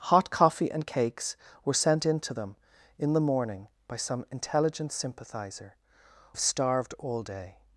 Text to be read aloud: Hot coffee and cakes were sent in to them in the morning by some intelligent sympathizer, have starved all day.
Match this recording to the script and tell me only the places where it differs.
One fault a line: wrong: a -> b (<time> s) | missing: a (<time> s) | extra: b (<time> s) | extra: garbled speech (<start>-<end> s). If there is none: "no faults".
no faults